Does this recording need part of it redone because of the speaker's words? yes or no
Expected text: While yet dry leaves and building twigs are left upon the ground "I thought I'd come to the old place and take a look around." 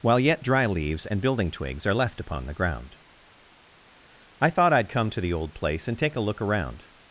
no